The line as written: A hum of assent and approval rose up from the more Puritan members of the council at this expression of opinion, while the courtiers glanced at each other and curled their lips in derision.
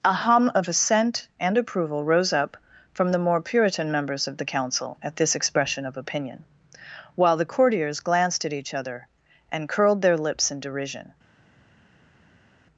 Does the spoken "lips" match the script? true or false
true